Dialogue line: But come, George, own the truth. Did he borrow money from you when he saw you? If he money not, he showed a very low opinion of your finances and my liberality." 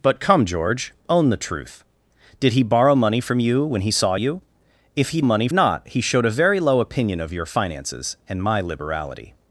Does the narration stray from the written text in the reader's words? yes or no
no